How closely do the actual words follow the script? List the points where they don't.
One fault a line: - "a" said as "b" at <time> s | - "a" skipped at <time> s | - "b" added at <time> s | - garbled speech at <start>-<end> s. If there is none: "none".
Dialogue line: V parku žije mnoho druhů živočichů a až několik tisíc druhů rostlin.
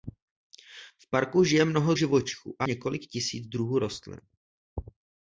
- "druhů" skipped at 1.9 s
- "až" skipped at 2.7 s